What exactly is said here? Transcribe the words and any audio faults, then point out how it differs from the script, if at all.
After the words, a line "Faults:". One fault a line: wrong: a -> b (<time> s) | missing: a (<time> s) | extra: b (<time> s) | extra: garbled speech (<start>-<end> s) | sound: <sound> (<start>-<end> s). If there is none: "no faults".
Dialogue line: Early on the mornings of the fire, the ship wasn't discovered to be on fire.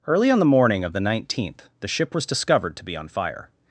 Early on the morning of the nineteenth, the ship was discovered to be on fire.
Faults:
wrong: mornings -> morning (0.5 s)
wrong: fire -> nineteenth (1.0 s)
wrong: wasn't -> was (2.1 s)